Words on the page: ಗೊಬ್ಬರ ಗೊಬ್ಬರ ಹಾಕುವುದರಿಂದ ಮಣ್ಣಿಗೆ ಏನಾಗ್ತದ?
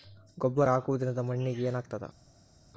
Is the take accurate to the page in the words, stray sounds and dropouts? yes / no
no